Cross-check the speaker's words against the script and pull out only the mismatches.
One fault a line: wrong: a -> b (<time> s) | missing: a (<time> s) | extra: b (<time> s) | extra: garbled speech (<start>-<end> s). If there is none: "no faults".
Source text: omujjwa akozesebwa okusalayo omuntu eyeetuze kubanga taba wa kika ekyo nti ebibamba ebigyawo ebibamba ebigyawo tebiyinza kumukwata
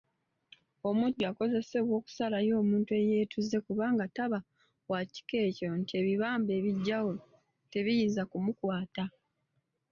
missing: ebibamba ebigyawo (7.1 s)